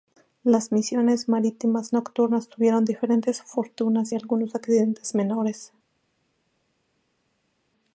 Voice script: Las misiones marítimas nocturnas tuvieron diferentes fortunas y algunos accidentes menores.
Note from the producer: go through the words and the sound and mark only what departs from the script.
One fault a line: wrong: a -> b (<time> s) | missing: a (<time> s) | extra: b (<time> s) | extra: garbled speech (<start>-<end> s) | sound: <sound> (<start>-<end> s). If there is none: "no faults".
no faults